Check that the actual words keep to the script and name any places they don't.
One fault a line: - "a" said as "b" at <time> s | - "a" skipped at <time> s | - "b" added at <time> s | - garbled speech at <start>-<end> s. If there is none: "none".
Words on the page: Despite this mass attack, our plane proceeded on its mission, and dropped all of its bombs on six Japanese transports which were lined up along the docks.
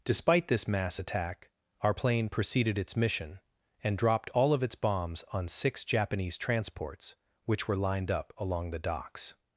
- "on" skipped at 2.8 s